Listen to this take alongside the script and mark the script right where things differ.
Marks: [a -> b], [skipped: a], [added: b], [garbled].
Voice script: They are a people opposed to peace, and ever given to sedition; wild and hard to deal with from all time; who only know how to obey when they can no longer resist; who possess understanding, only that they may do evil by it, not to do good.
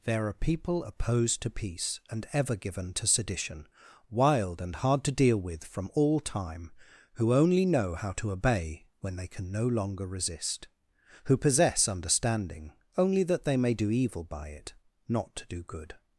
[They -> There] are [skipped: a] people opposed to peace, and ever given to sedition; wild and hard to deal with from all time; who only know how to obey when they can no longer resist; who possess understanding, only that they may do evil by it, not to do good.